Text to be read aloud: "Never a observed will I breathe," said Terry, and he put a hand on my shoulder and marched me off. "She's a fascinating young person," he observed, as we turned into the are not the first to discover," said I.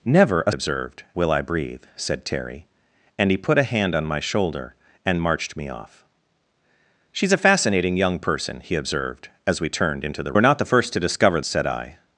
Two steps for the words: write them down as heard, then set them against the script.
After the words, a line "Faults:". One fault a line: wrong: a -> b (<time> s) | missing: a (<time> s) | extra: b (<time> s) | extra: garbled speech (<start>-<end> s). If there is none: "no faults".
"Never a observed will I breathe," said Terry, and he put a hand on my shoulder and marched me off. "She's a fascinating young person," he observed, as we turned into the are not the first to discover," said I.
Faults:
no faults